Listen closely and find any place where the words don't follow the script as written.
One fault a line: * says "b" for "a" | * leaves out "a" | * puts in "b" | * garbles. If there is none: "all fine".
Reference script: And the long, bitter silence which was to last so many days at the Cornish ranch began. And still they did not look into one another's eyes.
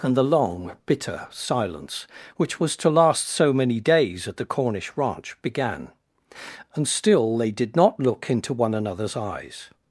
all fine